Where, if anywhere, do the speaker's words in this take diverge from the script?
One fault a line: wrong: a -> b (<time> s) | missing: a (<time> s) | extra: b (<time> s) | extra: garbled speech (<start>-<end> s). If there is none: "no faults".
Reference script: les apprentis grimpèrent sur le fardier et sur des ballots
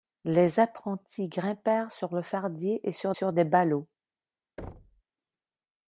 extra: sur (3.1 s)